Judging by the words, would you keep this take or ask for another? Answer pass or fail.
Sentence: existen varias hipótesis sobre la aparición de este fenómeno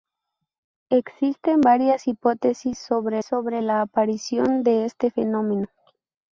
fail